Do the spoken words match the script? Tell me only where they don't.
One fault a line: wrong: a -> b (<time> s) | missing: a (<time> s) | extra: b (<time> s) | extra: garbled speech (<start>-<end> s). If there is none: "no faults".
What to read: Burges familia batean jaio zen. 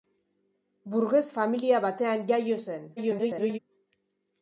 extra: garbled speech (3.0-3.6 s)